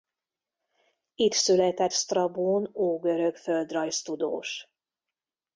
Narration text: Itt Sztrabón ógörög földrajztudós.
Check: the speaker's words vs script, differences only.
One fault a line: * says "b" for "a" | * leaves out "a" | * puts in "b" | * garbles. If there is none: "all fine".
* puts in "született"